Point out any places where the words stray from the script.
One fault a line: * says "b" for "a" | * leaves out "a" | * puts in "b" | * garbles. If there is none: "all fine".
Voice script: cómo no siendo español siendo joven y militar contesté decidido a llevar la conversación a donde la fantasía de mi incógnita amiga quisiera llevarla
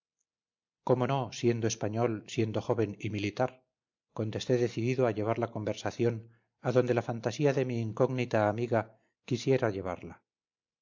all fine